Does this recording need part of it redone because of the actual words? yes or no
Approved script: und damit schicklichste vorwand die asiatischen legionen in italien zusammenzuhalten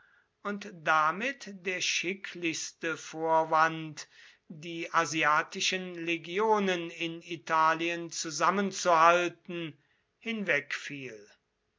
yes